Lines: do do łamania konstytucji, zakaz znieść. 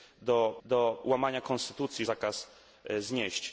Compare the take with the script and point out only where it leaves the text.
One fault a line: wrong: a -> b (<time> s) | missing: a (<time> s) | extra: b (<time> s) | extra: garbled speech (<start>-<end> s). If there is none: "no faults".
no faults